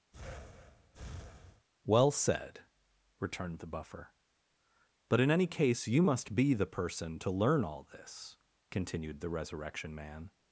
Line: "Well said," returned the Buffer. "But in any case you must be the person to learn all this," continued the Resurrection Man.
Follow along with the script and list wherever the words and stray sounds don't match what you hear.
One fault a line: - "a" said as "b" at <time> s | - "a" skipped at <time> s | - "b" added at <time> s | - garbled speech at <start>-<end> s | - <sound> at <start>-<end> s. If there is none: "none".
- breath at 0.1-1.7 s